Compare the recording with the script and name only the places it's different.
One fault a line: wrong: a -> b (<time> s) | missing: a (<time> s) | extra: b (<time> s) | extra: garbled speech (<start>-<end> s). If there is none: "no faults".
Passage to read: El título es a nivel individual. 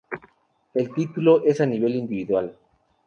no faults